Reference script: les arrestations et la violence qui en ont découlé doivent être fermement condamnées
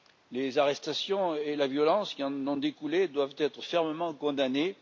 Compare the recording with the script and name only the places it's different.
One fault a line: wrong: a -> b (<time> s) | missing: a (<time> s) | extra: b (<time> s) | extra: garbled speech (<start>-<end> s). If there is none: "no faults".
no faults